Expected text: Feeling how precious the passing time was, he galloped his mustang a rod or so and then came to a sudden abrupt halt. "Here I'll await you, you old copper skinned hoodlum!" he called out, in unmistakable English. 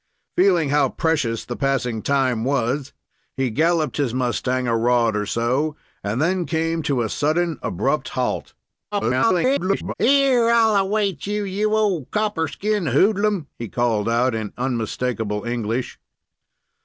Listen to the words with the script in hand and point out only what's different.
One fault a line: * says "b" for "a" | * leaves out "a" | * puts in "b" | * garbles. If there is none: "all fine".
* garbles